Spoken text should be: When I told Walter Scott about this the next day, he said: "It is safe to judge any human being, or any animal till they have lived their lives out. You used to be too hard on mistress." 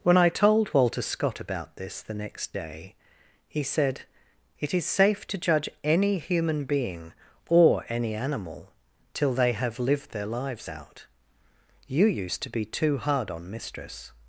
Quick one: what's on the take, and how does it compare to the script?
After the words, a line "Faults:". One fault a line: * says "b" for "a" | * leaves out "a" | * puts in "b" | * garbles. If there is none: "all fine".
When I told Walter Scott about this the next day, he said: "It is safe to judge any human being, or any animal till they have lived their lives out. You used to be too hard on mistress."
Faults:
all fine